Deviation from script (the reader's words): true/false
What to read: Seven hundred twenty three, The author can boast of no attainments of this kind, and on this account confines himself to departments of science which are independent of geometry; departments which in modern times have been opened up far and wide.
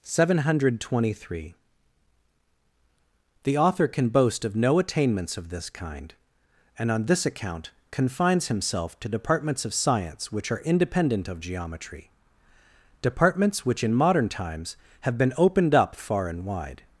false